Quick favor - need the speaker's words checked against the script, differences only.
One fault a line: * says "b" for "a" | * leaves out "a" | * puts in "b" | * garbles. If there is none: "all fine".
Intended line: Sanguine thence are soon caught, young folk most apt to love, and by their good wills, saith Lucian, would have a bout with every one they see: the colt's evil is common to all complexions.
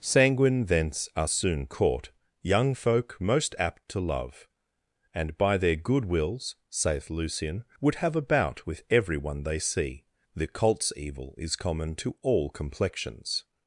all fine